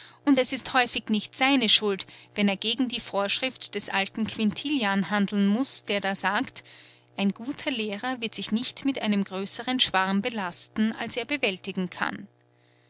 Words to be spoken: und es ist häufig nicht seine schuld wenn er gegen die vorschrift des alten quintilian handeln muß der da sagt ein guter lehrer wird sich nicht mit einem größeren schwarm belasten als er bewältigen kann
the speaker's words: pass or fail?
pass